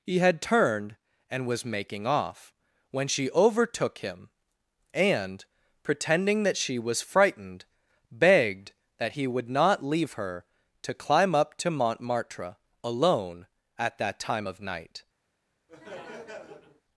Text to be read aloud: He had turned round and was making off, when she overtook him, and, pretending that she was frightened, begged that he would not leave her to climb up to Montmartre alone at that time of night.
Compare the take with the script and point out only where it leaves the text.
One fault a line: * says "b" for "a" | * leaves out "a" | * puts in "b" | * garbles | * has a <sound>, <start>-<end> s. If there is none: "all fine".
* leaves out "round"
* has a laugh, 15.7-16.8 s